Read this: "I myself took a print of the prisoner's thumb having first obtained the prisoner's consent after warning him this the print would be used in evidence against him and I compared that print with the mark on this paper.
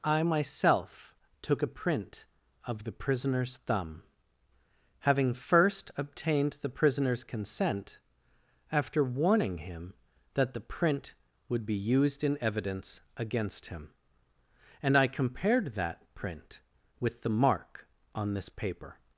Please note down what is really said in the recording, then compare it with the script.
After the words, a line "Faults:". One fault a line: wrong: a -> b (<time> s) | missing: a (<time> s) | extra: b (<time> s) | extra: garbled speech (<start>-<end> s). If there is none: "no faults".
"I myself took a print of the prisoner's thumb having first obtained the prisoner's consent after warning him that the print would be used in evidence against him and I compared that print with the mark on this paper.
Faults:
wrong: this -> that (10.3 s)